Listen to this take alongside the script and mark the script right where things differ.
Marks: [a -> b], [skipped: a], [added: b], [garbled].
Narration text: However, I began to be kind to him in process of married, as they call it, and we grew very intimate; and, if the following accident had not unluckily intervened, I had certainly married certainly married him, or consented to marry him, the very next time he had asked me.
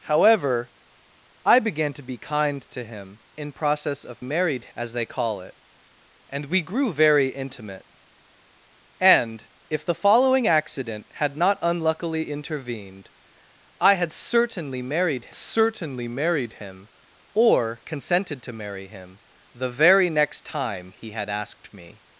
However, I began to be kind to him in process of married, as they call it, and we grew very intimate; and, if the following accident had not unluckily intervened, I had certainly married certainly married him, or consented to marry him, the very next time he had asked me.